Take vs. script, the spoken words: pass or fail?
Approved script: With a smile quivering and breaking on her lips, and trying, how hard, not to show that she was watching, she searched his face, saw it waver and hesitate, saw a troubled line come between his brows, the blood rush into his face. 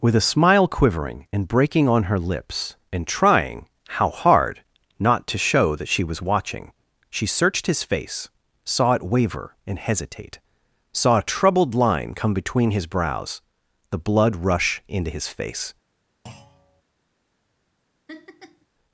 pass